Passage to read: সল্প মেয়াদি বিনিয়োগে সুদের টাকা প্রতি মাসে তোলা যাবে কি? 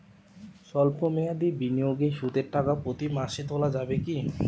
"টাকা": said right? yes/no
yes